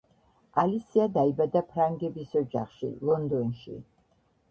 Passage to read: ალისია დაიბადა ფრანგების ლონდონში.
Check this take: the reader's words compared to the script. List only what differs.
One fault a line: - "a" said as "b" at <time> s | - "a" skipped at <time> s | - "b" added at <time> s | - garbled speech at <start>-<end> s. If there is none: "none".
- "ოჯახში" added at 2.4 s